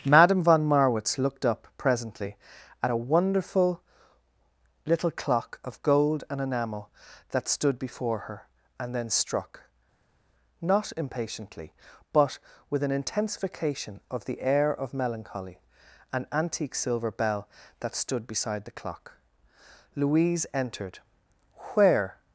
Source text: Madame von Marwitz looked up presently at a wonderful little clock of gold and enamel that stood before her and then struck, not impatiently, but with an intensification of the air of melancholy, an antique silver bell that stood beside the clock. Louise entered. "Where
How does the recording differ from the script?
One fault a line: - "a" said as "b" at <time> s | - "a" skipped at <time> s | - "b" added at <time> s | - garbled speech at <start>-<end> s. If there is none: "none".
none